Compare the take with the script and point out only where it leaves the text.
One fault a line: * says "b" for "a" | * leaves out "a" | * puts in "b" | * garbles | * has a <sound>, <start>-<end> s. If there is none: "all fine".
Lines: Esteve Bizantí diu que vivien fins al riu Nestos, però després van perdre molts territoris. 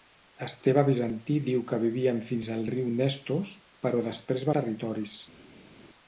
* leaves out "van perdre molts"